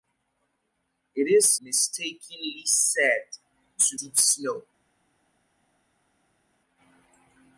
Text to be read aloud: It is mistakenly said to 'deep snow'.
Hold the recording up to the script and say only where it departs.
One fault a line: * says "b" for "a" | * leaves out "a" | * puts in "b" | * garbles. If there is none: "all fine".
all fine